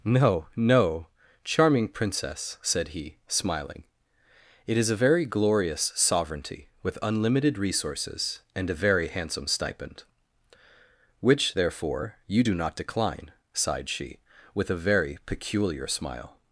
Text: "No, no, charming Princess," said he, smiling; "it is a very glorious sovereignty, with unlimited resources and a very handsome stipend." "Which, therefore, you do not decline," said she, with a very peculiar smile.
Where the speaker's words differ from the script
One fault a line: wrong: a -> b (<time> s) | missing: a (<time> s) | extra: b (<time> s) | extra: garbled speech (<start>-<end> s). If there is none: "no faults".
wrong: said -> sighed (13.5 s)